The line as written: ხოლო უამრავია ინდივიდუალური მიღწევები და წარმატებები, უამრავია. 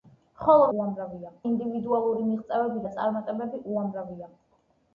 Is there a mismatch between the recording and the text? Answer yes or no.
no